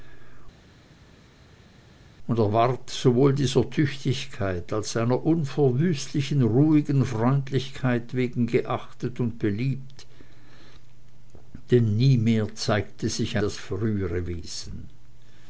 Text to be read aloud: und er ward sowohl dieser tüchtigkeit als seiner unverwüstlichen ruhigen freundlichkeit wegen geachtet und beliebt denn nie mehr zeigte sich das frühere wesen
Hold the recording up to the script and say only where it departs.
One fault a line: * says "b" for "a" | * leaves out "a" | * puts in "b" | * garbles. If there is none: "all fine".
all fine